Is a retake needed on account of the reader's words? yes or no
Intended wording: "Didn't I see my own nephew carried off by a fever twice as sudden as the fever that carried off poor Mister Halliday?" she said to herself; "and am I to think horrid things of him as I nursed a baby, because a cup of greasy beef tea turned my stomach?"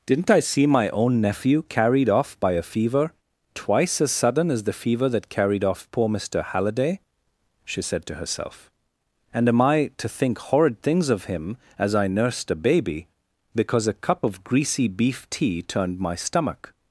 no